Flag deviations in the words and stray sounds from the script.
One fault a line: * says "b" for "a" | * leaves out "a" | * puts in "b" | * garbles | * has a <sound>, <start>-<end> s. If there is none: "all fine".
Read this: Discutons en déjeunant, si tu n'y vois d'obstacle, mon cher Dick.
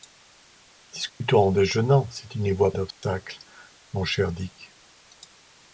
* has a dropout, 1.1-1.2 s
* has a dropout, 2.9-3.0 s